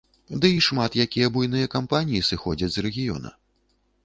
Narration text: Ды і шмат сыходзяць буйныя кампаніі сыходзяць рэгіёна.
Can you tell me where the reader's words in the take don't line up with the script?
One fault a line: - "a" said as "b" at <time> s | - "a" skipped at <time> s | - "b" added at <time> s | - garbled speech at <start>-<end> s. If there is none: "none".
- "сыходзяць" said as "якія" at 1.1 s
- "з" added at 2.8 s